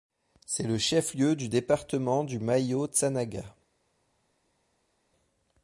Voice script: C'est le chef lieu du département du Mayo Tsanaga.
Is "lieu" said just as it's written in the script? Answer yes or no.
yes